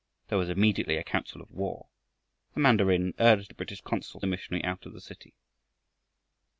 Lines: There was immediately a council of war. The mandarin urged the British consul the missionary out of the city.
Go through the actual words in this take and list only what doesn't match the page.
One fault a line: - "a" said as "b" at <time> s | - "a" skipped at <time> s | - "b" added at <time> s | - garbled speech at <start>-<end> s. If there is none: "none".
none